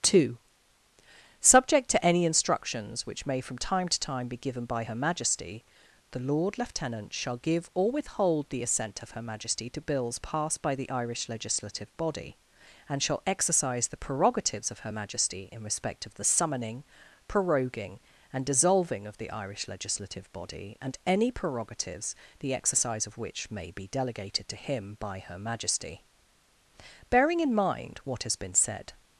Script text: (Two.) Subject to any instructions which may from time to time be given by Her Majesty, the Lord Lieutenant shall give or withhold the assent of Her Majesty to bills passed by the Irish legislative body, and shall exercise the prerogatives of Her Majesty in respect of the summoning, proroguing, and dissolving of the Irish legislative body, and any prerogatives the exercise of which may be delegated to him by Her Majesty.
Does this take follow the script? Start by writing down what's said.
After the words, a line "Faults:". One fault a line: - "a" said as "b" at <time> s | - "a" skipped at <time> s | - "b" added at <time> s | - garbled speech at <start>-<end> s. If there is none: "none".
(Two.) Subject to any instructions which may from time to time be given by Her Majesty, the Lord Lieutenant shall give or withhold the assent of Her Majesty to bills passed by the Irish legislative body, and shall exercise the prerogatives of Her Majesty in respect of the summoning, proroguing, and dissolving of the Irish legislative body, and any prerogatives the exercise of which may be delegated to him by Her Majesty. Bearing in mind what has been said
Faults:
- "Bearing in mind what has been said" added at 27.1 s